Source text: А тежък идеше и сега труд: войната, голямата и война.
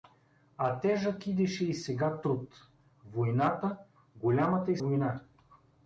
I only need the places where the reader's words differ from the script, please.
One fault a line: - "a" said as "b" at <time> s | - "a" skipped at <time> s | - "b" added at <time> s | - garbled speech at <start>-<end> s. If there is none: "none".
none